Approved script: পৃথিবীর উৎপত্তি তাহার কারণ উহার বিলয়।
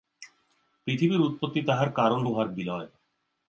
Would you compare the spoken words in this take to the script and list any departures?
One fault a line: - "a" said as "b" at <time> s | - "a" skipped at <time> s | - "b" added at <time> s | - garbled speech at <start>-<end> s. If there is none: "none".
none